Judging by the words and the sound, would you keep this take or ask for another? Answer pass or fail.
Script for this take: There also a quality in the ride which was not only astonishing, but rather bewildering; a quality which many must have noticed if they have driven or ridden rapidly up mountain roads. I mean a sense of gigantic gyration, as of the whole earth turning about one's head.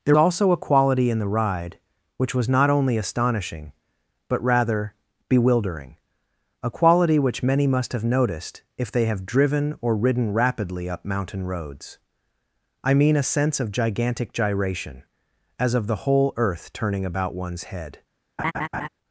fail